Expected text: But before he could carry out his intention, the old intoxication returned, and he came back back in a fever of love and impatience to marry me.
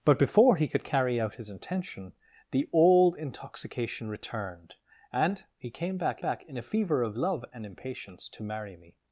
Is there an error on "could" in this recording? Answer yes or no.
no